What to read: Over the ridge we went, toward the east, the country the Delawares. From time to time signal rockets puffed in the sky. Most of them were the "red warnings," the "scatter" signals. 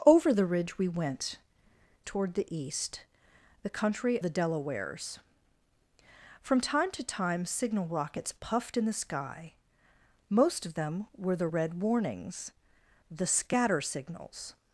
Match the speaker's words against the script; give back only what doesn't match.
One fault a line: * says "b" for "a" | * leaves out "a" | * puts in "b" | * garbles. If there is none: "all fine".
all fine